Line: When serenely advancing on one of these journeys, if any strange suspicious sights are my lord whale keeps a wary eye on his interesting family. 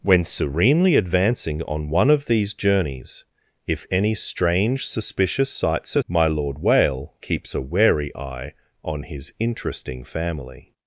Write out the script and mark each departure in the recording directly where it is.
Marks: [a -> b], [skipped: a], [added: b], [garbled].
When serenely advancing on one of these journeys, if any strange suspicious sights are my lord whale keeps a wary eye on his interesting family.